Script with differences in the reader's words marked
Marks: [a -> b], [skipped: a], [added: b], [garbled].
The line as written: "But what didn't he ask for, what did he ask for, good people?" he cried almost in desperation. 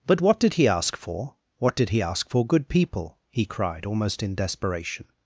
"But what [didn't -> did] he ask for, what did he ask for, good people?" he cried almost in desperation.